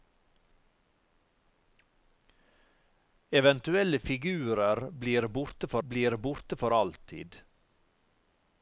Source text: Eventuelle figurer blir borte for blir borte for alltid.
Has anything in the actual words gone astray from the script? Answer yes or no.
no